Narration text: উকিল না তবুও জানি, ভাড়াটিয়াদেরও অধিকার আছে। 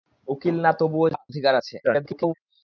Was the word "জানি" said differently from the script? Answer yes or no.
yes